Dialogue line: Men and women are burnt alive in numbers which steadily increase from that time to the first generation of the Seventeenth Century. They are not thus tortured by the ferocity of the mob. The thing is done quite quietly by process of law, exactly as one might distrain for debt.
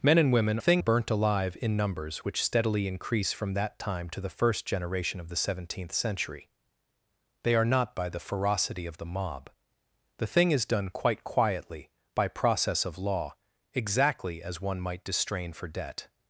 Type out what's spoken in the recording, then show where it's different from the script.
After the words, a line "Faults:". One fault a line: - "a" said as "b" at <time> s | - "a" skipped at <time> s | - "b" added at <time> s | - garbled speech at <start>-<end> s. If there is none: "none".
Men and women thing burnt alive in numbers which steadily increase from that time to the first generation of the Seventeenth Century. They are not by the ferocity of the mob. The thing is done quite quietly by process of law, exactly as one might distrain for debt.
Faults:
- "are" said as "thing" at 0.6 s
- "thus tortured" skipped at 8.0 s